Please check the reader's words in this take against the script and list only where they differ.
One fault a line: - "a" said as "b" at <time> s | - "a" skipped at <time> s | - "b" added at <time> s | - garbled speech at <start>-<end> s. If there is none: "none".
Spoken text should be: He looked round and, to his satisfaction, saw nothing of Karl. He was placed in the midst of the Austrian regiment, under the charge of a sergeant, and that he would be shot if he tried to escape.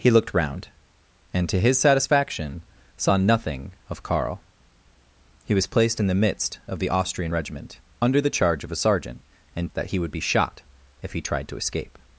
none